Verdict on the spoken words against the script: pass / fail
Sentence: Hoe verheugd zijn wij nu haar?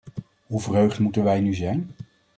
fail